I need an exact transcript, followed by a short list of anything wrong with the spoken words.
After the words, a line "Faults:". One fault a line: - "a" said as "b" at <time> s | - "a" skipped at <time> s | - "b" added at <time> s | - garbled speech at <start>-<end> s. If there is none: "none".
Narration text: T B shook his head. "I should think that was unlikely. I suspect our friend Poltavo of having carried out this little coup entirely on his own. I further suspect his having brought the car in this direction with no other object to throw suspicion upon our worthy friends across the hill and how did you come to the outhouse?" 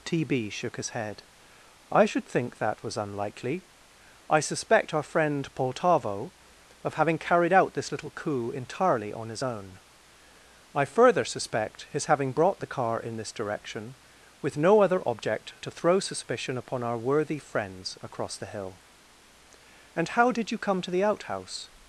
T B shook his head. "I should think that was unlikely. I suspect our friend Poltavo of having carried out this little coup entirely on his own. I further suspect his having brought the car in this direction with no other object to throw suspicion upon our worthy friends across the hill and how did you come to the outhouse?"
Faults:
none